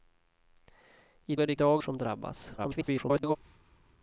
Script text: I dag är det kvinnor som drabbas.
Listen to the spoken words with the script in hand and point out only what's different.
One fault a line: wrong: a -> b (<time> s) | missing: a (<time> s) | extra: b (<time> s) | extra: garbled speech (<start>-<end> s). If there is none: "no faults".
missing: dag (1.4 s)
wrong: kvinnor -> dag (1.5 s)
extra: garbled speech (2.6-3.4 s)